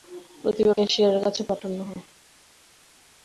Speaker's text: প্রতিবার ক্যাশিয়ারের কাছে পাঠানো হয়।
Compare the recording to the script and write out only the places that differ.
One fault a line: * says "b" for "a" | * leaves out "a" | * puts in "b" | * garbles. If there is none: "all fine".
all fine